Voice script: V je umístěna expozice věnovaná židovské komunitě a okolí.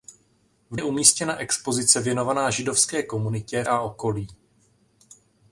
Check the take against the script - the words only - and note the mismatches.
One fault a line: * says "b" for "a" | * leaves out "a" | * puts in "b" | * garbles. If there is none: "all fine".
all fine